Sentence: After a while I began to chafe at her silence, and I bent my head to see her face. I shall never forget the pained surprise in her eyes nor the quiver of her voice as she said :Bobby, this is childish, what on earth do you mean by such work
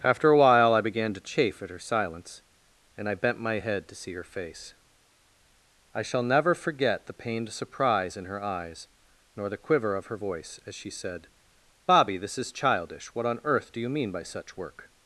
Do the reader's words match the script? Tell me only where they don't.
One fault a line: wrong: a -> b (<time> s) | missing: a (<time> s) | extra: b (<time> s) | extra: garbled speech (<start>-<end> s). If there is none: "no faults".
no faults